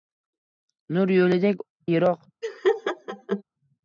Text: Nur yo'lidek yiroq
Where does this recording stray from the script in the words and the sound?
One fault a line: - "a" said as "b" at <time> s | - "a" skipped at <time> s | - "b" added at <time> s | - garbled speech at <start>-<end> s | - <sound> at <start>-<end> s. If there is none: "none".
- laugh at 2.4-3.4 s